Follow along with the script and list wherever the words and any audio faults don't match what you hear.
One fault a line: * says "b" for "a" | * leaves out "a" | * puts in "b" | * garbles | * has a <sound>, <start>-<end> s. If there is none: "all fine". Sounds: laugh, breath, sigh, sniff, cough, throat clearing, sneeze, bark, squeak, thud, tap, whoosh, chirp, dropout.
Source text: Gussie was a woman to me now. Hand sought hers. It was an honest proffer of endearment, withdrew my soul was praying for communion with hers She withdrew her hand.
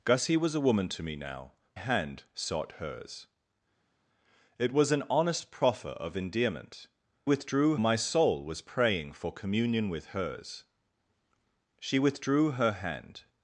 all fine